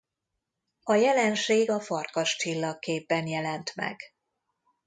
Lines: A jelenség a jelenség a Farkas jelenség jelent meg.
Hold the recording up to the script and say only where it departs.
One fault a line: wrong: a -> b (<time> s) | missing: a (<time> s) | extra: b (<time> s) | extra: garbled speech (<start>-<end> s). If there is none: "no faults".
missing: jelenség a (1.8 s)
wrong: jelenség -> csillagképben (2.4 s)